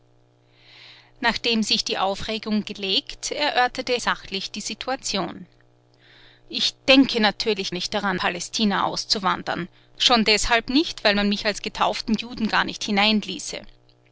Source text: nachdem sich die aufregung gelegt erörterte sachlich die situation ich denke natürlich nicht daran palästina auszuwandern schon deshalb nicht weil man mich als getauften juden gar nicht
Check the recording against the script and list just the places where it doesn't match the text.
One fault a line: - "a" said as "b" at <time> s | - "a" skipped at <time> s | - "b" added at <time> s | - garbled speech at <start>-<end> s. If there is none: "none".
none